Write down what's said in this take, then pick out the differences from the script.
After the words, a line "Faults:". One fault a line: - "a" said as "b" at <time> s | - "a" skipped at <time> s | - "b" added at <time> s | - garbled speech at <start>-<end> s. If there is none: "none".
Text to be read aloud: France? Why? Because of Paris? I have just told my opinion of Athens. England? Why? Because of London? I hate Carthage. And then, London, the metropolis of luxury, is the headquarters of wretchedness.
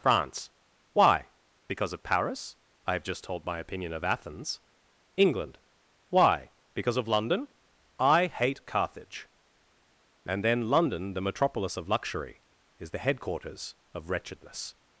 France? Why? Because of Paris? I have just told my opinion of Athens. England? Why? Because of London? I hate Carthage. And then, London, the metropolis of luxury, is the headquarters of wretchedness.
Faults:
none